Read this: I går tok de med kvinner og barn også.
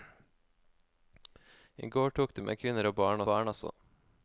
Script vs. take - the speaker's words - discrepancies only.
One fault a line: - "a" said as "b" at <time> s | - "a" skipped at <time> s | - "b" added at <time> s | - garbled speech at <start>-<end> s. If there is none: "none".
- "barn" added at 3.3 s